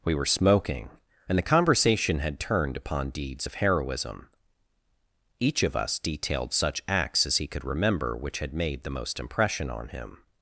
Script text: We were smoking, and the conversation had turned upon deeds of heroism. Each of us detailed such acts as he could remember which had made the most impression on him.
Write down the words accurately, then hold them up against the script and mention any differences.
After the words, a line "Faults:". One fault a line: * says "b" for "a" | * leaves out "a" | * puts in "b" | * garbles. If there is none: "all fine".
We were smoking, and the conversation had turned upon deeds of heroism. Each of us detailed such acts as he could remember which had made the most impression on him.
Faults:
all fine